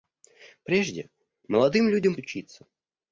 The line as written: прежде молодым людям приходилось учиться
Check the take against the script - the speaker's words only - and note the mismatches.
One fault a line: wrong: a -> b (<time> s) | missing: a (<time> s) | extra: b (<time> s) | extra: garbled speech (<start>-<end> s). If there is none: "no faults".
missing: приходилось (2.1 s)